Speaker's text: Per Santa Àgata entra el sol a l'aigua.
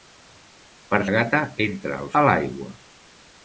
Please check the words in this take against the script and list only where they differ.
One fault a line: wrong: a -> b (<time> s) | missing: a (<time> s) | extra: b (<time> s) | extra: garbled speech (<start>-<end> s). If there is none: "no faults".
missing: Santa (1.0 s)
missing: sol (2.1 s)